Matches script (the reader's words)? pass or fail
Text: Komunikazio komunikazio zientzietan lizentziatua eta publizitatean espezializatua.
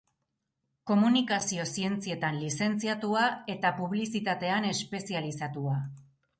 fail